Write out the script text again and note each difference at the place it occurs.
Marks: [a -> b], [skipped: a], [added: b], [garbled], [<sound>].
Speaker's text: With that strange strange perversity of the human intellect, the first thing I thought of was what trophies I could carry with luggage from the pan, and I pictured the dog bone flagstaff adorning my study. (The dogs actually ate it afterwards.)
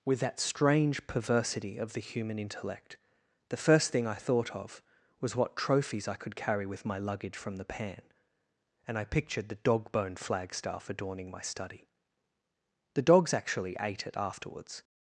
With that strange [skipped: strange] perversity of the human intellect, the first thing I thought of was what trophies I could carry with [added: my] luggage from the pan, and I pictured the dog bone flagstaff adorning my study. (The dogs actually ate it afterwards.)